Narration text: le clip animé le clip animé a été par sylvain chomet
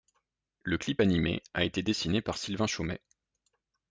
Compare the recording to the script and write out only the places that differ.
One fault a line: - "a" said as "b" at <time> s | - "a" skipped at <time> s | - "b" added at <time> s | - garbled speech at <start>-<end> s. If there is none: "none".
- "le clip animé" skipped at 1.4 s
- "dessiné" added at 1.8 s